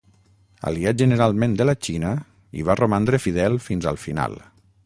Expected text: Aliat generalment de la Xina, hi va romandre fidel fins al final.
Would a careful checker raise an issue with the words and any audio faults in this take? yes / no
no